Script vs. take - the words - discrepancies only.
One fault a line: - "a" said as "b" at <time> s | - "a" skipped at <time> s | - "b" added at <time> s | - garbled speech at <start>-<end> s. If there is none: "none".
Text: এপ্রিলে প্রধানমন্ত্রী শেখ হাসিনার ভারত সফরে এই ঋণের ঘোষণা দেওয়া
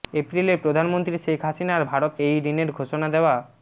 - "সফরে" skipped at 2.1 s